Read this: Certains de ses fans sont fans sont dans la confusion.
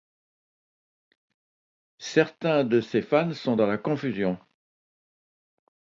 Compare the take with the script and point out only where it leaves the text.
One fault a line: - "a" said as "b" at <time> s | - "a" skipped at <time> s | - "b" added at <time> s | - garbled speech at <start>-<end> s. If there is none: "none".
- "fans sont" skipped at 3.5 s